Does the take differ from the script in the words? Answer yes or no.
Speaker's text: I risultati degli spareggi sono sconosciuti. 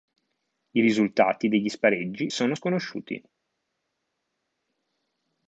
no